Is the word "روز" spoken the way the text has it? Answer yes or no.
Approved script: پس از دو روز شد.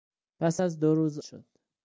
yes